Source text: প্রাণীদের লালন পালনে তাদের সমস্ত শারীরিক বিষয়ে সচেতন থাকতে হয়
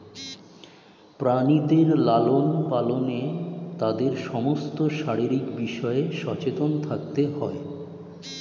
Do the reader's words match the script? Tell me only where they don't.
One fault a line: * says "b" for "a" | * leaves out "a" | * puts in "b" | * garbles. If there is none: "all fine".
all fine